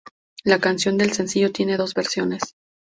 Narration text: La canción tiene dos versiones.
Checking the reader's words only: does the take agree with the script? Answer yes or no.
no